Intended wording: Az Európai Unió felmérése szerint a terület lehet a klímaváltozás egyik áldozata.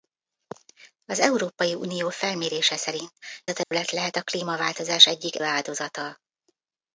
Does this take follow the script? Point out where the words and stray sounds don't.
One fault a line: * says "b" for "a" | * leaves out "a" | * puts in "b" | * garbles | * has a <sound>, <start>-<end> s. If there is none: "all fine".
* has a dropout, 3.6-3.7 s